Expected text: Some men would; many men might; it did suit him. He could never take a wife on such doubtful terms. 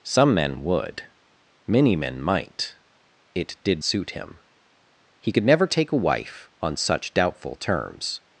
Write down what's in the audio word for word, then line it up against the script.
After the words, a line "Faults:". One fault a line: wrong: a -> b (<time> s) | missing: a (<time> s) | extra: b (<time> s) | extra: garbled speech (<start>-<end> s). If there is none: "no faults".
Some men would; many men might; it did suit him. He could never take a wife on such doubtful terms.
Faults:
no faults